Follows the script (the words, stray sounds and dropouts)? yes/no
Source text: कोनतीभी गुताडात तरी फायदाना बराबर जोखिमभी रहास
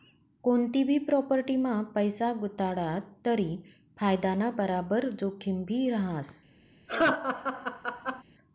no